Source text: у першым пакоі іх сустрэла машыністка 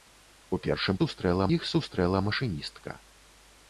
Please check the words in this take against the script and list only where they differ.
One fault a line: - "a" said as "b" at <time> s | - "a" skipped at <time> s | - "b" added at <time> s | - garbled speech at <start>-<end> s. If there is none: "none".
- "пакоі" said as "сустрэла" at 1.0 s